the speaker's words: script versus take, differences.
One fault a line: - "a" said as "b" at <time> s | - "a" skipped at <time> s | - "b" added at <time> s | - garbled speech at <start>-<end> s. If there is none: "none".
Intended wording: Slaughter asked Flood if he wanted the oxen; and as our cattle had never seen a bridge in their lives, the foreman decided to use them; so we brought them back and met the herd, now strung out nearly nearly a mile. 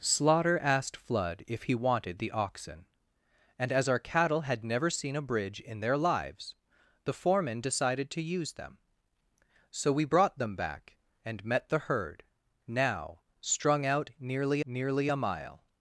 none